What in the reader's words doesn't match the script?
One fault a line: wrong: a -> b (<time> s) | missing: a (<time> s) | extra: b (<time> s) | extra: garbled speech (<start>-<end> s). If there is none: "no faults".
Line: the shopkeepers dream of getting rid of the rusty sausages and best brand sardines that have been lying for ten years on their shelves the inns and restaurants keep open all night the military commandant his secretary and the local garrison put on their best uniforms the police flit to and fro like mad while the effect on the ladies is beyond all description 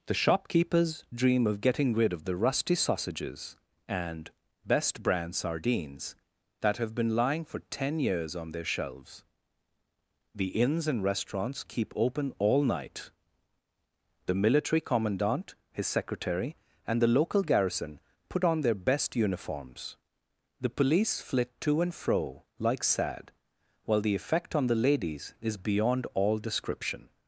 wrong: mad -> sad (22.8 s)